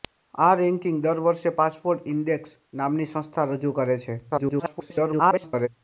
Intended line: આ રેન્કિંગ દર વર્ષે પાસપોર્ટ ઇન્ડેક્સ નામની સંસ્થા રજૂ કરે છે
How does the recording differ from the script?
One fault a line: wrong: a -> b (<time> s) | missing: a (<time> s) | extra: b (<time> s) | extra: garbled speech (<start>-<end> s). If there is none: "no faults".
extra: garbled speech (4.3-5.7 s)